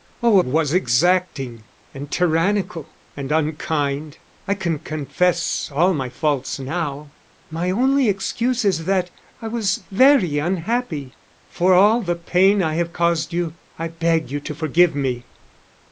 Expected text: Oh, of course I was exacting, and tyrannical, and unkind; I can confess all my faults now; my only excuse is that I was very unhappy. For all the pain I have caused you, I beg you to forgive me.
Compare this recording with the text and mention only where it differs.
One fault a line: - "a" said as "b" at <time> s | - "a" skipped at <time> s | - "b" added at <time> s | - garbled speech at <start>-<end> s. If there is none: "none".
- "of course I" skipped at 0.4 s